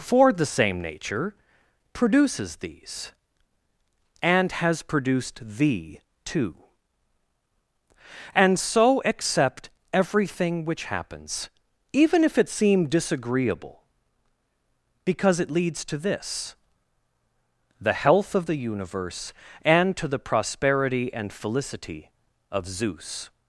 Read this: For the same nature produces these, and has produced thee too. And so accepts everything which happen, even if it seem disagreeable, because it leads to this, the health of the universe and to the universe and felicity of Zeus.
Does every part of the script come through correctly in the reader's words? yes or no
no